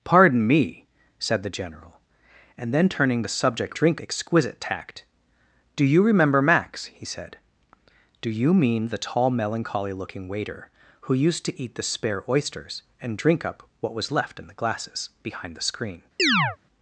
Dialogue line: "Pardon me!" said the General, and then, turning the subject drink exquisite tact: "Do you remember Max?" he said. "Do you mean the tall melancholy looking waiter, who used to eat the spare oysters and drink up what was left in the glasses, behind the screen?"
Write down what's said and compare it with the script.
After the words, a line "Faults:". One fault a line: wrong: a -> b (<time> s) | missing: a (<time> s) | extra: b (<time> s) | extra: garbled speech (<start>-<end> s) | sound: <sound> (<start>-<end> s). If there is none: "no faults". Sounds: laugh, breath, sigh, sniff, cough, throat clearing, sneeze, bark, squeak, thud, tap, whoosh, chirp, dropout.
"Pardon me!" said the General, and then, turning the subject drink exquisite tact: "Do you remember Max?" he said. "Do you mean the tall melancholy looking waiter, who used to eat the spare oysters and drink up what was left in the glasses, behind the screen?"
Faults:
sound: chirp (16.2-16.6 s)